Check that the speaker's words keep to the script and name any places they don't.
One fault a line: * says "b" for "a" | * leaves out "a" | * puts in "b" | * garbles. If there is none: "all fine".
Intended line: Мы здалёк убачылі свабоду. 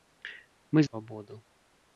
* leaves out "здалёк убачылі"